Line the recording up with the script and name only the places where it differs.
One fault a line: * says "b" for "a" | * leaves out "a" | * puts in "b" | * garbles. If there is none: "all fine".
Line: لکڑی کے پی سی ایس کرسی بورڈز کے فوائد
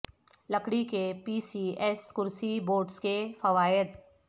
all fine